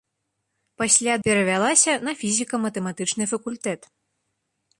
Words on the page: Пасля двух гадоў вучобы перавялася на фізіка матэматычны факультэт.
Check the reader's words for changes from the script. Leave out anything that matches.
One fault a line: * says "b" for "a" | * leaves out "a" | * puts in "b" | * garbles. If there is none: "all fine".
* leaves out "двух гадоў вучобы"